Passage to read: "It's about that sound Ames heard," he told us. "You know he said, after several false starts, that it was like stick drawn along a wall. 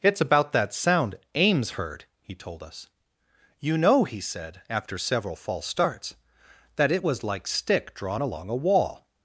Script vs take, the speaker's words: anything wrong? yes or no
no